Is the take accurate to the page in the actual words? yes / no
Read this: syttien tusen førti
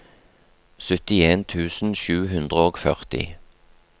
no